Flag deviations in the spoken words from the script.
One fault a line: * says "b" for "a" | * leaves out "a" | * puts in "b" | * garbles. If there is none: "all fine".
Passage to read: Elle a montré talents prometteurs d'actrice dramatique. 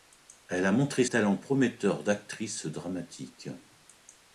all fine